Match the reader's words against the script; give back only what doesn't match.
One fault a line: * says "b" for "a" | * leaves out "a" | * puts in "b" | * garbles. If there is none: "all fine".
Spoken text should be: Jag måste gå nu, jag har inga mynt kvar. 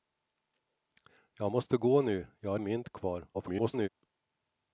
* leaves out "inga"
* garbles